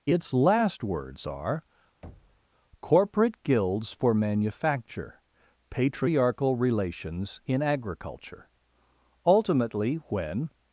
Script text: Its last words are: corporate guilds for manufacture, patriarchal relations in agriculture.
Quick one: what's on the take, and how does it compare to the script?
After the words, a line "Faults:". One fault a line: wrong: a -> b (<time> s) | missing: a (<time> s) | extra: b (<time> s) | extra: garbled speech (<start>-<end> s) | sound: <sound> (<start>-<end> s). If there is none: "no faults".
Its last words are: corporate guilds for manufacture, patriarchal relations in agriculture. Ultimately, when
Faults:
sound: thud (2.0-2.4 s)
extra: Ultimately when (9.3 s)